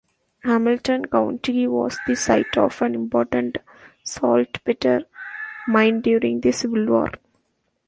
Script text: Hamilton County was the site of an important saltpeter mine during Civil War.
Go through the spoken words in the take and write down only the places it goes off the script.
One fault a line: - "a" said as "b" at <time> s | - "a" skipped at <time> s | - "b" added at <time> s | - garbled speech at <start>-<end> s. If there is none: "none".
- "the" added at 6.4 s